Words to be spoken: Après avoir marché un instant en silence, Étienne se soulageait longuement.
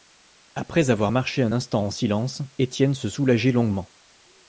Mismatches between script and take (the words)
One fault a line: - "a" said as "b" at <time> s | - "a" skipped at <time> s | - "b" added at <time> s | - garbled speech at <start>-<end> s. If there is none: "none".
none